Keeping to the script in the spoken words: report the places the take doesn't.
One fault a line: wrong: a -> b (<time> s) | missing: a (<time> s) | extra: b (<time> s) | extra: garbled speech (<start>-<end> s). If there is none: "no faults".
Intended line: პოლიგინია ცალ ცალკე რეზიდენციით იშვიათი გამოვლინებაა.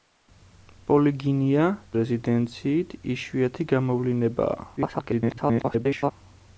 missing: ცალ ცალკე (1.7 s)
extra: garbled speech (4.8-6.1 s)